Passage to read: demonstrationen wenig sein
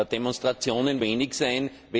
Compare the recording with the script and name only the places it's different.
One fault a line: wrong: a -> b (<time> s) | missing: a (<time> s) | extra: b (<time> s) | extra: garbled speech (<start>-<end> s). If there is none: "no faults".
no faults